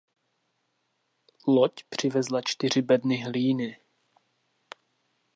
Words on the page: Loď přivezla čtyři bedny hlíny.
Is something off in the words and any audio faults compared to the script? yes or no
no